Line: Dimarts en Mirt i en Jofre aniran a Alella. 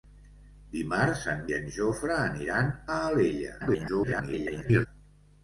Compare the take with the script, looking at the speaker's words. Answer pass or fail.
fail